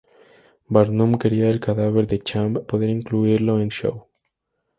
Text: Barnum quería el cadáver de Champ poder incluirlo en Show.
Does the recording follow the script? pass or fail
pass